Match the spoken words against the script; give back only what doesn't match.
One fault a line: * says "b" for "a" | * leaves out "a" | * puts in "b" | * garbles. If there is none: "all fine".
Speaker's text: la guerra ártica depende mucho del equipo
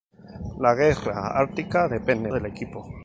* leaves out "mucho"